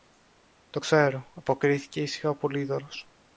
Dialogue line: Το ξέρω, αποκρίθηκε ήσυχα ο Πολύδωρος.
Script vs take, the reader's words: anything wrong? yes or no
no